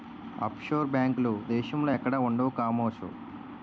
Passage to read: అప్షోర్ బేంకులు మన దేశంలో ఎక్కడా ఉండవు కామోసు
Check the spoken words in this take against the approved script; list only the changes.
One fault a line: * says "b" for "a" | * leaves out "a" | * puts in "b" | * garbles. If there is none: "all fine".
* leaves out "మన"